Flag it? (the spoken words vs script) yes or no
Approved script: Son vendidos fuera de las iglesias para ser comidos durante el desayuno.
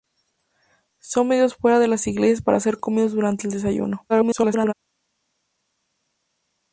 yes